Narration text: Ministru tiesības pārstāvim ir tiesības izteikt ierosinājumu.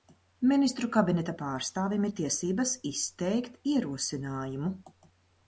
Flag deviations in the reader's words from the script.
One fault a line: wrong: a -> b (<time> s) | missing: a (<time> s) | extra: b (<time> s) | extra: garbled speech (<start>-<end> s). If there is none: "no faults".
wrong: tiesības -> kabineta (0.9 s)